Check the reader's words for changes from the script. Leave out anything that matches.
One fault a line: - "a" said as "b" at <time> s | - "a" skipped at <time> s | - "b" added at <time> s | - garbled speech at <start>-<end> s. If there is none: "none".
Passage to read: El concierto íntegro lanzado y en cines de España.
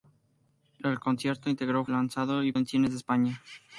none